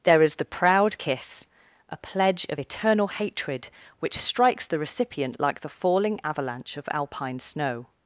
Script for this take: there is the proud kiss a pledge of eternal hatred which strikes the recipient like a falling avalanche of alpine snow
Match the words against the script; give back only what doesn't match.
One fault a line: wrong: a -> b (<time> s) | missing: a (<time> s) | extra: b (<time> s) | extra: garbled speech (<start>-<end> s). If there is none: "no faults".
wrong: a -> the (5.6 s)